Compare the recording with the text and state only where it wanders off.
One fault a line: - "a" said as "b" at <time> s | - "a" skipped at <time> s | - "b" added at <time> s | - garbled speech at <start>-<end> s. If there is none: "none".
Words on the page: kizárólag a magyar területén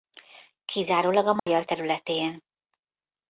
none